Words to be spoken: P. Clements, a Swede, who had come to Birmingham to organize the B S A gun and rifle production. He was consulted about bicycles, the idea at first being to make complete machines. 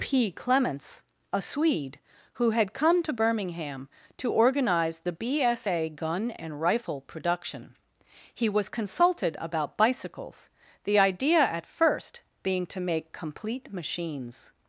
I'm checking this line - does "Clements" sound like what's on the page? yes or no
yes